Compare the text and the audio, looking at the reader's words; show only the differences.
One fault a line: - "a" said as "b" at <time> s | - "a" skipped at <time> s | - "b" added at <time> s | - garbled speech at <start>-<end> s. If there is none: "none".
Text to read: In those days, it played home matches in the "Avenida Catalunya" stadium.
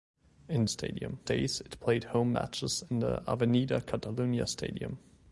- "those" said as "stadium" at 0.7 s